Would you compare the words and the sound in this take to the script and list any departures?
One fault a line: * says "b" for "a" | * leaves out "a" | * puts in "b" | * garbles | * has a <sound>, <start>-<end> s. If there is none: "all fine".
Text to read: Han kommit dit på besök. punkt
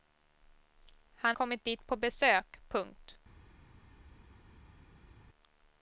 all fine